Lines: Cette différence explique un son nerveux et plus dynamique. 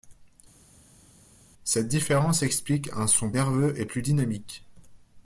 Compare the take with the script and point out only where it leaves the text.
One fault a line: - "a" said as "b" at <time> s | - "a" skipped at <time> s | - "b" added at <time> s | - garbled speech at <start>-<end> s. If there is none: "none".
none